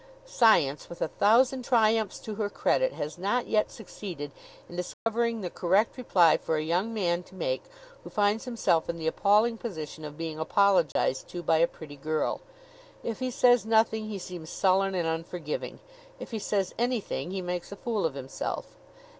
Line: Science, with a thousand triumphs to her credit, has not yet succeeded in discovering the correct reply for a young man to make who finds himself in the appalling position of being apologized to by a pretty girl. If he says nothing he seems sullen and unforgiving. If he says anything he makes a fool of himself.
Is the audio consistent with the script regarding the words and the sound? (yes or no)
no